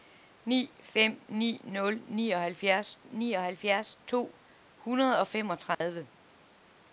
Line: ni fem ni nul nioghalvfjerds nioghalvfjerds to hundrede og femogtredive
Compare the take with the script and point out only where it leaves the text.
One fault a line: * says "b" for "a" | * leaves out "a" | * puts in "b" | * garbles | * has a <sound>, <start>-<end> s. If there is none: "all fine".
* has a dropout, 5.7-5.8 s